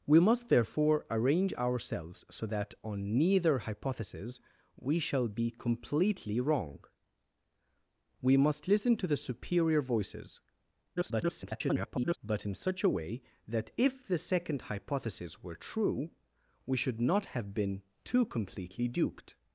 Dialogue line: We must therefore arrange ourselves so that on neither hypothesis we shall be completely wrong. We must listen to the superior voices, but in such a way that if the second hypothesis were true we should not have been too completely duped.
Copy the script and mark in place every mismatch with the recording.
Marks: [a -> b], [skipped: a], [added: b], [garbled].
We must therefore arrange ourselves so that on neither hypothesis we shall be completely wrong. We must listen to the superior voices, [garbled] but in such a way that if the second hypothesis were true we should not have been too completely duped.